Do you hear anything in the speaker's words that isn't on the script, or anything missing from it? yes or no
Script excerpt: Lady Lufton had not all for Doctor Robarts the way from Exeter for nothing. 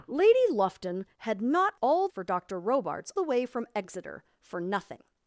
no